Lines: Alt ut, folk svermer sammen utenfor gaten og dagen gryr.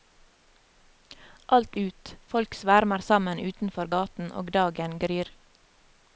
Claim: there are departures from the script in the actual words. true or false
false